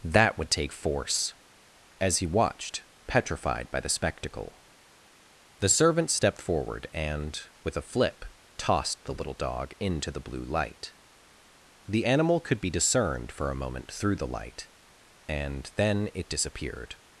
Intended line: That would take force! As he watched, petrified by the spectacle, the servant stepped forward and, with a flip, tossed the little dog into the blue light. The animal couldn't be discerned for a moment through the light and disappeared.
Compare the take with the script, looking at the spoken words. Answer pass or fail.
fail